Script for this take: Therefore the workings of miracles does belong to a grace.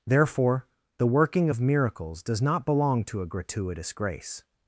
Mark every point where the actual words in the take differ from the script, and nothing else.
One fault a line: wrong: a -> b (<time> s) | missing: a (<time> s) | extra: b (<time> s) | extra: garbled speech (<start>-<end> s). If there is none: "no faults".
wrong: workings -> working (1.1 s)
extra: not (2.4 s)
extra: gratuitous (3.3 s)